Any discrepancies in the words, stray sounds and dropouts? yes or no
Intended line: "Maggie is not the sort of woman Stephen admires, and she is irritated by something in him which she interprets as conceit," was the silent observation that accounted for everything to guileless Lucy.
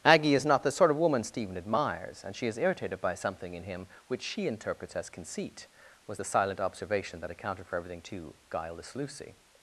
yes